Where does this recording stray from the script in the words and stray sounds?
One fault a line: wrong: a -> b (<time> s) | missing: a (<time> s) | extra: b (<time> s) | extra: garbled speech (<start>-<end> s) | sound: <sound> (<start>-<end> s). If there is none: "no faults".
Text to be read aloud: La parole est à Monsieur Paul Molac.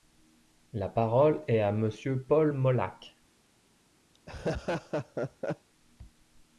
sound: laugh (4.1-5.7 s)